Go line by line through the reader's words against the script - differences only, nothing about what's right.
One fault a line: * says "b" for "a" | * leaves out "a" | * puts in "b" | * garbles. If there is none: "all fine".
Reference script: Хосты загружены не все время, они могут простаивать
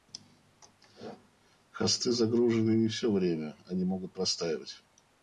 all fine